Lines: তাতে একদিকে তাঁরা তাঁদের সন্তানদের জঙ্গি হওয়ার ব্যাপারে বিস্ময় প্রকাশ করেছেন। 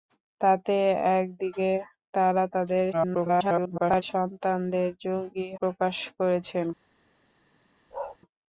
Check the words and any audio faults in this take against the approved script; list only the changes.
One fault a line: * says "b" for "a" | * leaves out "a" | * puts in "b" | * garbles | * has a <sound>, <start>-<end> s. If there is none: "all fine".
* garbles
* leaves out "হওয়ার ব্যাপারে বিস্ময়"
* has a bark, 7.9-8.2 s